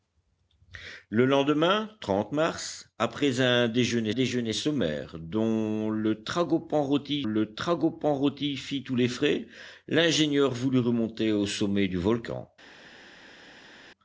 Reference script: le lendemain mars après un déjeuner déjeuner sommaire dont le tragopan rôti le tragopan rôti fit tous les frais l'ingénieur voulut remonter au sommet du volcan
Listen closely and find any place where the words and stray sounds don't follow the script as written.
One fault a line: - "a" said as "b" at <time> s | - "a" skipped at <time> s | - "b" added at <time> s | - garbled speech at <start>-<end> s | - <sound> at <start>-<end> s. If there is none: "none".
none